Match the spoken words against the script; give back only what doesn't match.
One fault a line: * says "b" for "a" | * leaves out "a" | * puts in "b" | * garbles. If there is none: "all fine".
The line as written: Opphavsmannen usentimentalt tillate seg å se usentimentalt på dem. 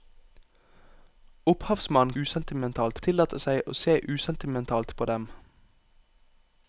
all fine